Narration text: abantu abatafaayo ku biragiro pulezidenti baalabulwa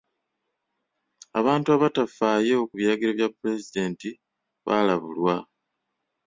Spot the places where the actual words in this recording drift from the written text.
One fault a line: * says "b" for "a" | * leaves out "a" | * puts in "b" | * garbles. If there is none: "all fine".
* puts in "bya"